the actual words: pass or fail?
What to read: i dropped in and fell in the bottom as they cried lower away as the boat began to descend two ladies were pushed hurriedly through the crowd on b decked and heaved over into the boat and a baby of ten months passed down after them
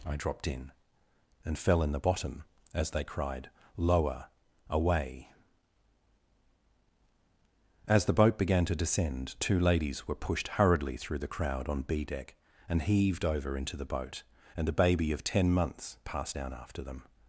fail